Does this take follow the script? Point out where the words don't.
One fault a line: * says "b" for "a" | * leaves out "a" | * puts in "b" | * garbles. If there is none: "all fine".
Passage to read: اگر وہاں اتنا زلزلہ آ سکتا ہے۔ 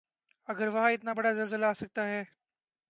* puts in "بڑا"